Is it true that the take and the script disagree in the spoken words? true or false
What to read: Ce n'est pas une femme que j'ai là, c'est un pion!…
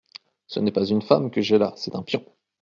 false